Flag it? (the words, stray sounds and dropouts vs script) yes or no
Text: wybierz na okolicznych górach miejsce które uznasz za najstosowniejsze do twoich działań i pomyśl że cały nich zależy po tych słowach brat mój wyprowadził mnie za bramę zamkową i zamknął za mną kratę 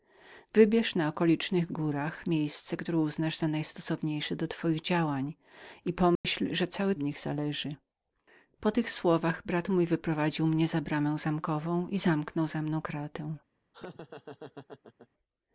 yes